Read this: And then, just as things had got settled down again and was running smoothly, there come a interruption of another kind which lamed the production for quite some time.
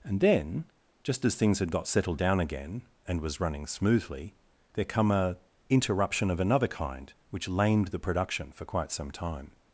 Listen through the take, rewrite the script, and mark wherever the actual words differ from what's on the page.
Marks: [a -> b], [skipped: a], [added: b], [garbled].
And then, just as things had got settled down again and was running smoothly, there come a interruption of another kind which lamed the production for quite some time.